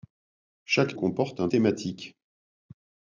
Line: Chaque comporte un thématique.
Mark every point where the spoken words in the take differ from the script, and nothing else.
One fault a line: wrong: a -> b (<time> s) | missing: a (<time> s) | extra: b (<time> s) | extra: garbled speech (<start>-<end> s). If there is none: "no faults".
no faults